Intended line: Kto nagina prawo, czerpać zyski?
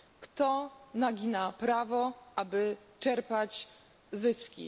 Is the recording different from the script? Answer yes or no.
yes